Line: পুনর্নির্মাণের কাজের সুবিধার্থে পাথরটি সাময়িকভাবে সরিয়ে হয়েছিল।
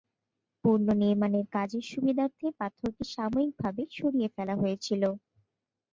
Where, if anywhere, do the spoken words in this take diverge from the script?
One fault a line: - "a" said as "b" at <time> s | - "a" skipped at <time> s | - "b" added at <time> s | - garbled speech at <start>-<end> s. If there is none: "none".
- "ফেলা" added at 4.3 s